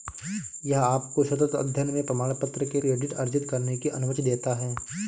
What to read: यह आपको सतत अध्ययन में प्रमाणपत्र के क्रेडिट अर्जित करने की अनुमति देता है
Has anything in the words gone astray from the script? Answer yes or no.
no